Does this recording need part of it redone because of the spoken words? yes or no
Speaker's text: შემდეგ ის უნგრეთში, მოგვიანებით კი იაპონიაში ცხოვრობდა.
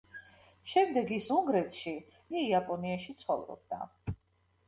yes